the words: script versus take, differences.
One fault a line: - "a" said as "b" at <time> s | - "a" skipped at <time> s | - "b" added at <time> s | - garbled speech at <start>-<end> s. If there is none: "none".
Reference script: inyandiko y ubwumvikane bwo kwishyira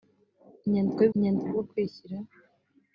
- "ubwumvikane" said as "inyandiko" at 1.1 s